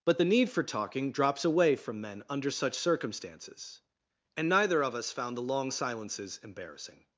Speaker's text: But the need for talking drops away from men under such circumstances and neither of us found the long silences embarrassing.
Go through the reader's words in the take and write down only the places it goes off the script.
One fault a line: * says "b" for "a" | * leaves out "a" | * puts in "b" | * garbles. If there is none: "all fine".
all fine